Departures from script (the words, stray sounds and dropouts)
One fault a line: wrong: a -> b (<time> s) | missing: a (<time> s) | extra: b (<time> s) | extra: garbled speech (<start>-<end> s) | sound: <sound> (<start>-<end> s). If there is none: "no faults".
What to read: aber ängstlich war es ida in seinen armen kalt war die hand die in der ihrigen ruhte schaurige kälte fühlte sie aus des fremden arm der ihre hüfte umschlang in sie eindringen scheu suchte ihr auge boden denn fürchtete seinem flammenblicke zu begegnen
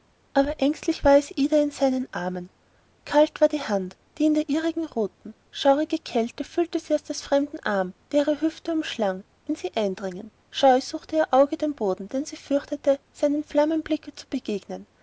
extra: den (11.6 s)
extra: sie (12.2 s)